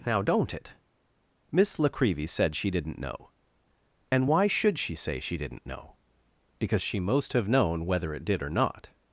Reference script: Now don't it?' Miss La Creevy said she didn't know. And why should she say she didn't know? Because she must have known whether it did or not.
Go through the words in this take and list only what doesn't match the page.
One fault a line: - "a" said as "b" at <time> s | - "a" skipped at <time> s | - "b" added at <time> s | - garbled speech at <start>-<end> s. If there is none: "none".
- "must" said as "most" at 7.0 s